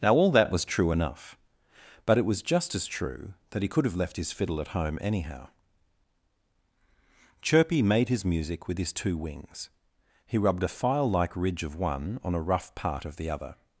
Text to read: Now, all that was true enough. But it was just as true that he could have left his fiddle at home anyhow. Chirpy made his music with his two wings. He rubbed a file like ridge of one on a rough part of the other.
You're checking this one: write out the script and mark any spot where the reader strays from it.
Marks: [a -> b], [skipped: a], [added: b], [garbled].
Now, all that was true enough. But it was just as true that he could have left his fiddle at home anyhow. Chirpy made his music with his two wings. He rubbed a file like ridge of one on a rough part of the other.